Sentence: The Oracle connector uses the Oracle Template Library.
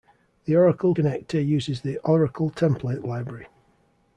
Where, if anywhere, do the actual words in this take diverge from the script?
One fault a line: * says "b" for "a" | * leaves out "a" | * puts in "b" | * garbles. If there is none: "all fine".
all fine